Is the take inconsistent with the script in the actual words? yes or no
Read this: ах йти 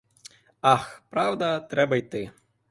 yes